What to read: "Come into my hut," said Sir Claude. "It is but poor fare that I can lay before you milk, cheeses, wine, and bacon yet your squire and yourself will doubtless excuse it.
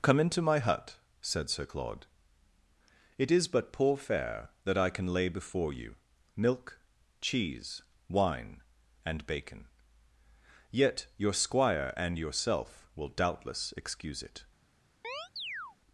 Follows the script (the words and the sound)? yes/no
no